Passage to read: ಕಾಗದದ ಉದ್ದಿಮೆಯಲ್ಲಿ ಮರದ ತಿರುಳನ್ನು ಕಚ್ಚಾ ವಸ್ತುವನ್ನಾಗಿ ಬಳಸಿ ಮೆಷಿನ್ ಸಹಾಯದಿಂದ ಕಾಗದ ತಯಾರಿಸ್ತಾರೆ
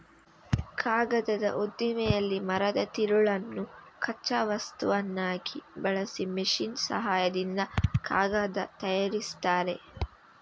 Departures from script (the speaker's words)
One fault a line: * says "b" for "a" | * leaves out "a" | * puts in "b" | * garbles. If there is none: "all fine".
all fine